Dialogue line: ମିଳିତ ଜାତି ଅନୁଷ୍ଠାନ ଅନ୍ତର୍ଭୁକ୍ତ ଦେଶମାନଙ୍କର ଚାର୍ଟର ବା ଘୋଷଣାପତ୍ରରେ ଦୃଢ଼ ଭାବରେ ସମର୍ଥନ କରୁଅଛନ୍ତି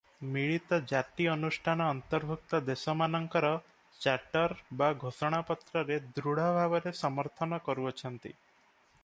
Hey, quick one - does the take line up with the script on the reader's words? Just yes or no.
yes